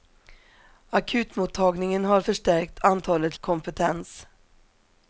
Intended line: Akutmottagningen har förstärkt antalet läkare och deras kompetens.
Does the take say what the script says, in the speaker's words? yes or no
no